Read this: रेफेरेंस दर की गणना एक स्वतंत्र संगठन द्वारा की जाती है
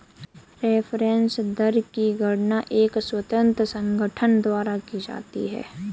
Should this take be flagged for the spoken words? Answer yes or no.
no